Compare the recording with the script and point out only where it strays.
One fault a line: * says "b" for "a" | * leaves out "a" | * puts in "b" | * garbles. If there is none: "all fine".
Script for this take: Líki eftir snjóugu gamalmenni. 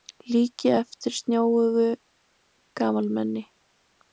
all fine